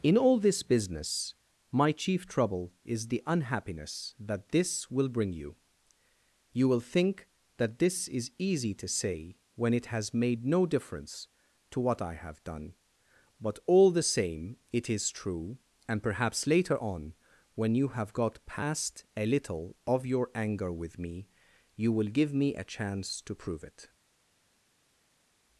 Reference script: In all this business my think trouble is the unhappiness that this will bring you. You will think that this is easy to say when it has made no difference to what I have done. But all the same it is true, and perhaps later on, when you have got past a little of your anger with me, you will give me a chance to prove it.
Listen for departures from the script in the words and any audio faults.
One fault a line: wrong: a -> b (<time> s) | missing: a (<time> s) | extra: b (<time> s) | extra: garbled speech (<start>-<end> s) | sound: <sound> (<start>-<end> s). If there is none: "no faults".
wrong: think -> chief (1.9 s)